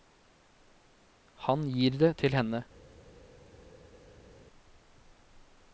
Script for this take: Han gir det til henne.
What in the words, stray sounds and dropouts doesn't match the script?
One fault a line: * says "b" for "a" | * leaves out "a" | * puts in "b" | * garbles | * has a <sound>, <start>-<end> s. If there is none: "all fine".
all fine